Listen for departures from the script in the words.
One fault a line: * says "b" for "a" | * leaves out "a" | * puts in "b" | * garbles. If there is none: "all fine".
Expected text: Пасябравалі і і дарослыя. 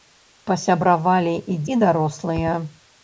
all fine